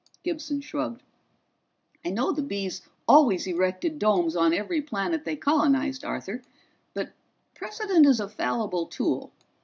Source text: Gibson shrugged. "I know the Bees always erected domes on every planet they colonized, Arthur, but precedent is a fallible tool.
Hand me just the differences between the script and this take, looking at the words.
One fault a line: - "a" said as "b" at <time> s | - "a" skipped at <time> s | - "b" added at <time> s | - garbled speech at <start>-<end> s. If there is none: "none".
none